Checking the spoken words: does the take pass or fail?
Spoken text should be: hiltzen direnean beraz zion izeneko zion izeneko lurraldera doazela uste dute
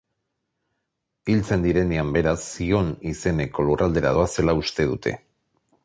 fail